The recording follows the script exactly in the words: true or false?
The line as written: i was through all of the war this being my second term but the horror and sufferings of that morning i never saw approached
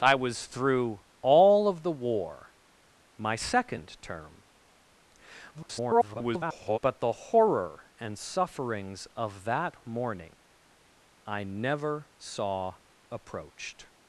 false